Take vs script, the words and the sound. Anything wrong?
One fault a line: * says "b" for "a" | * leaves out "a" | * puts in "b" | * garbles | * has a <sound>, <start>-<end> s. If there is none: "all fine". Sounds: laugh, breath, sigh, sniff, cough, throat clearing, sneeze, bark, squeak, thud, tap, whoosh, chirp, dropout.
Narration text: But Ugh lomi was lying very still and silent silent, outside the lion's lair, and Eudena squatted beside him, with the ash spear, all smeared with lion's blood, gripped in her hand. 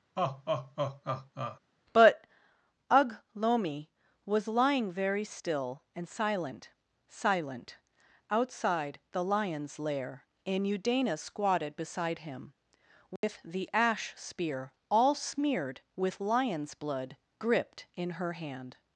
* has a laugh, 0.2-1.6 s
* has a dropout, 13.2-13.2 s